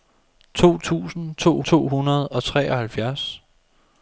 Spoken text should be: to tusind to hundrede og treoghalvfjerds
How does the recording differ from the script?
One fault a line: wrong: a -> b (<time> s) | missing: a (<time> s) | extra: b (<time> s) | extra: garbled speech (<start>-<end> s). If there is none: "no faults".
extra: to (1.6 s)